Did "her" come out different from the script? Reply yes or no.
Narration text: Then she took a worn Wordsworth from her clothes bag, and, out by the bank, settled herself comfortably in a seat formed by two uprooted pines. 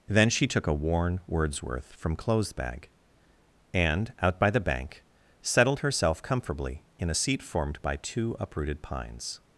yes